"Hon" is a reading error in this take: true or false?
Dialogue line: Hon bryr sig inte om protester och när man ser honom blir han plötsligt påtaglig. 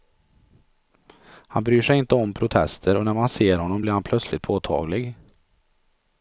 true